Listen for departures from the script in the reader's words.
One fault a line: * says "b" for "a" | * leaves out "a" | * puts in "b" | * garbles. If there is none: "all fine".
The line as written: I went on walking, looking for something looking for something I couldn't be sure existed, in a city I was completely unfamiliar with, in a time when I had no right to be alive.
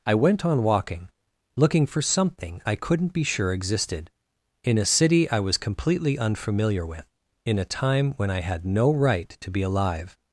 * leaves out "looking for something"